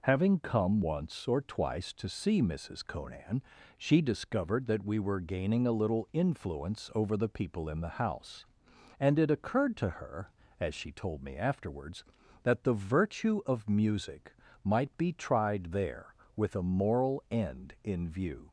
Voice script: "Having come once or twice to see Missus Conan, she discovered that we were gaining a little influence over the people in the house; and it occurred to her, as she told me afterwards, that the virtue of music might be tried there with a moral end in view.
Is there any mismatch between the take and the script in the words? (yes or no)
no